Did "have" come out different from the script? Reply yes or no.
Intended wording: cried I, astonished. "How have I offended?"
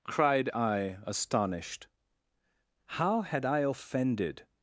yes